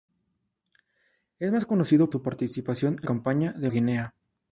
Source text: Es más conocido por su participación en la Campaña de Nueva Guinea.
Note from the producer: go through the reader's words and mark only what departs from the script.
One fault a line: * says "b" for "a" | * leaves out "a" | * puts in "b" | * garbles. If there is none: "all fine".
* leaves out "por"
* leaves out "la"
* leaves out "Nueva"